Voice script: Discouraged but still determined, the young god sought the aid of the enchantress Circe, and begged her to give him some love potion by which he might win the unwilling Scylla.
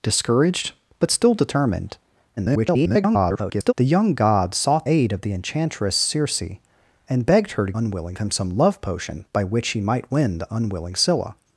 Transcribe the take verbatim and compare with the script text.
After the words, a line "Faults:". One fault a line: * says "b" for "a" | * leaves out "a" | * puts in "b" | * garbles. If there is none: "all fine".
Discouraged but still determined, [garbled] the young god sought aid of the enchantress Circe, and begged her to unwilling him some love potion by which he might win the unwilling Scylla.
Faults:
* garbles
* leaves out "the"
* says "unwilling" for "give"